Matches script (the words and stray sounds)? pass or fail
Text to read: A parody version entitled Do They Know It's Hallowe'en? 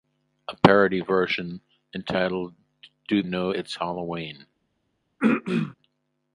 fail